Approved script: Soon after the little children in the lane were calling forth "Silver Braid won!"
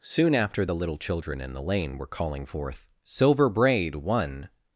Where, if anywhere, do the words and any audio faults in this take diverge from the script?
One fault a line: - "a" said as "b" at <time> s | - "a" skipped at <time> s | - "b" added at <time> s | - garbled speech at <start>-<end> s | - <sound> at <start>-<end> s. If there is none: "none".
none